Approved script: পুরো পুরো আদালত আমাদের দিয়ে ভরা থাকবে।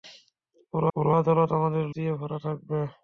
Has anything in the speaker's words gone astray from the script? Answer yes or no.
no